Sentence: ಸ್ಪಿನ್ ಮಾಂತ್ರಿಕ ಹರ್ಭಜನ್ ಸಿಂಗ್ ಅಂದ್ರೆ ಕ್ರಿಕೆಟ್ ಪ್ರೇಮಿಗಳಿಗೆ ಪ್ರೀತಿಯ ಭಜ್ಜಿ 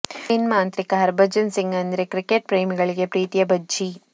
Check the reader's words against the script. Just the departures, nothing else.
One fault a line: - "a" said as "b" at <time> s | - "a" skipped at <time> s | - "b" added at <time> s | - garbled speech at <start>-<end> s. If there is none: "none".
none